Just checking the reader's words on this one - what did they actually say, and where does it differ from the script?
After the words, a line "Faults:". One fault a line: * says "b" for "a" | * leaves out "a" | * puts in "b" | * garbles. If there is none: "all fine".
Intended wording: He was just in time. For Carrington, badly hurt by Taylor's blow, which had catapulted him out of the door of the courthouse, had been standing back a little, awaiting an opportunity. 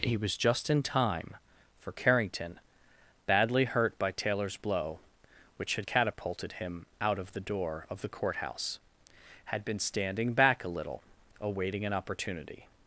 He was just in time. For Carrington, badly hurt by Taylor's blow, which had catapulted him out of the door of the courthouse, had been standing back a little, awaiting an opportunity.
Faults:
all fine